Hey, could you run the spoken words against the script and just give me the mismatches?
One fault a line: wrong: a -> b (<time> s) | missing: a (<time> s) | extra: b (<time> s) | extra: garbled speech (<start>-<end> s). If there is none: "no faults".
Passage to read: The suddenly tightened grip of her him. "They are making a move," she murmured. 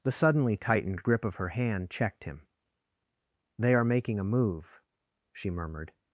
extra: hand checked (1.5 s)